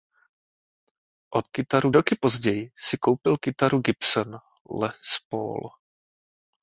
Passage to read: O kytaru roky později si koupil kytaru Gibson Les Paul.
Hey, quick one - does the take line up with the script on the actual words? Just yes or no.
yes